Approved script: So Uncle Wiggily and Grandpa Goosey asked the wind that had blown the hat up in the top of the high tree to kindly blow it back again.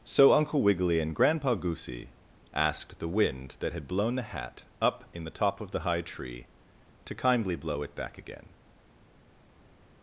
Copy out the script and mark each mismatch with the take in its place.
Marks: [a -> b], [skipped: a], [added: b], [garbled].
So Uncle Wiggily and Grandpa Goosey asked the wind that had blown the hat up in the top of the high tree to kindly blow it back again.